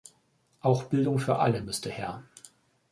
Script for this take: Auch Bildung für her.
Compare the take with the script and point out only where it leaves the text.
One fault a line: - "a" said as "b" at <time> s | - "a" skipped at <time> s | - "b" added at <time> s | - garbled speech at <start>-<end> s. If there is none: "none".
- "alle müsste" added at 1.4 s